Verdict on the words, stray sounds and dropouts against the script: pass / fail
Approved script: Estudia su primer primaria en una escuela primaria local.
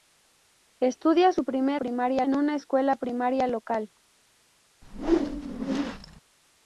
fail